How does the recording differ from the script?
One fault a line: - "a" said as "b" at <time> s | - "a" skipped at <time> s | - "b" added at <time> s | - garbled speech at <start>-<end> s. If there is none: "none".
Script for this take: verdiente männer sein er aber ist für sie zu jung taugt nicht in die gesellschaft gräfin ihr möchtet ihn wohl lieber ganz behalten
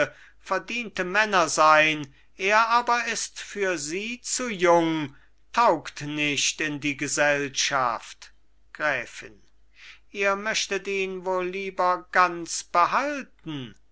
none